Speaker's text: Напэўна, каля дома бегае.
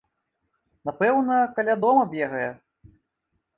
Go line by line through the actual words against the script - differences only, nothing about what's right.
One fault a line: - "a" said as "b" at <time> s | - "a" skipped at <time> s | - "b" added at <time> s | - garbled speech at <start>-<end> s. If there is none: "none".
none